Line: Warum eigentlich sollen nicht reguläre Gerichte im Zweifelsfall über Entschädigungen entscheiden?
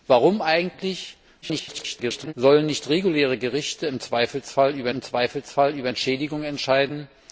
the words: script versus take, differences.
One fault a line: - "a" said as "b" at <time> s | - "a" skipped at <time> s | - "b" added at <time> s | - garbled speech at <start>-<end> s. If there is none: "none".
- garbled speech at 1.4-2.3 s
- "im Zweifelsfall über" added at 4.9 s